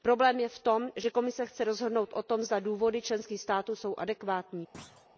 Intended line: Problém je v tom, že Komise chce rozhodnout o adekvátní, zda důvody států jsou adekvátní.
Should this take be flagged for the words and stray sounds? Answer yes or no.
yes